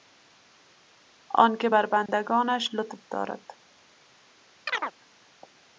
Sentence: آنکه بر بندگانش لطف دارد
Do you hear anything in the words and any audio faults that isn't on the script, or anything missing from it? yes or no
yes